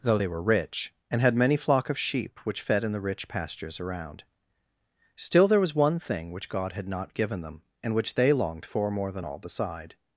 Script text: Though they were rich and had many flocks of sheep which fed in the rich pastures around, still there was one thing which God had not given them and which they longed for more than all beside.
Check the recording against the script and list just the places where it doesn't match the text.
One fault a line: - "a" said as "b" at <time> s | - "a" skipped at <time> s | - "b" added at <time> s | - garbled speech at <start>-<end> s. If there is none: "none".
- "flocks" said as "flock" at 1.6 s